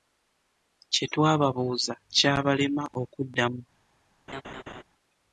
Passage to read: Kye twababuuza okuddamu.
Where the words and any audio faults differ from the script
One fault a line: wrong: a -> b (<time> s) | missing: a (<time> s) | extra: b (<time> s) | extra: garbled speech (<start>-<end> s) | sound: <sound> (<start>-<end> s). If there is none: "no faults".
extra: kyabalema (2.1 s)
sound: laugh (4.3-4.8 s)